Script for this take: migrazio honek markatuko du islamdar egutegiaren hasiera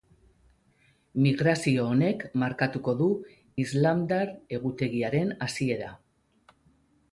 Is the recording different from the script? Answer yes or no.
no